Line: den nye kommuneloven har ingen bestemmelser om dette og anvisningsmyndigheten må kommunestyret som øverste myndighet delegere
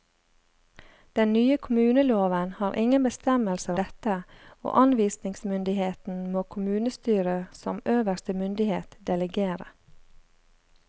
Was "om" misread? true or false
true